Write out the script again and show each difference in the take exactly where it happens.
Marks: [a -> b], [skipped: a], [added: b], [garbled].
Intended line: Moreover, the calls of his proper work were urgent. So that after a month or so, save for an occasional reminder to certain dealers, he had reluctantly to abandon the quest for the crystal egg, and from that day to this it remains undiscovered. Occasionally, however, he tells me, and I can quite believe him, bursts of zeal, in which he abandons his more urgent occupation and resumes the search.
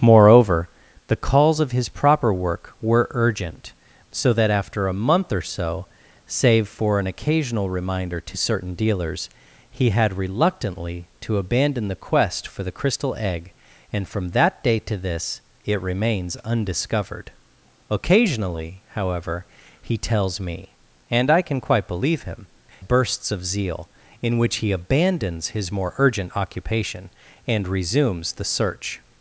Moreover, the calls of his proper work were urgent. So that after a month or so, save for an occasional reminder to certain dealers, he had reluctantly to abandon the quest for the crystal egg, and from that day to this it remains undiscovered. Occasionally, however, he tells me, and I can quite believe him, bursts of zeal, in which he abandons his more urgent occupation and resumes the search.